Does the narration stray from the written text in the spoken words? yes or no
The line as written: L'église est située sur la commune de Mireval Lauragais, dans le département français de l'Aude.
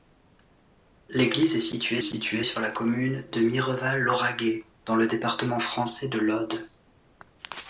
yes